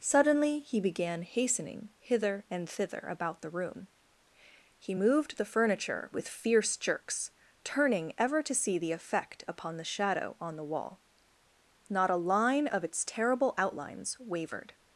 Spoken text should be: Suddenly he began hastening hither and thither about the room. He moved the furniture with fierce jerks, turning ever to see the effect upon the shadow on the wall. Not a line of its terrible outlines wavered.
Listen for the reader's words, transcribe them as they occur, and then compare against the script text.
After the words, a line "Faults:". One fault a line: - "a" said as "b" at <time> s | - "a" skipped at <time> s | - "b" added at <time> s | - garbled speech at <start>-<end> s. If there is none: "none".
Suddenly he began hastening hither and thither about the room. He moved the furniture with fierce jerks, turning ever to see the effect upon the shadow on the wall. Not a line of its terrible outlines wavered.
Faults:
none